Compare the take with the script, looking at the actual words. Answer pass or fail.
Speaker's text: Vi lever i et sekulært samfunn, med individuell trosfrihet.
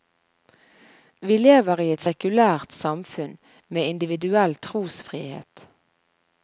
pass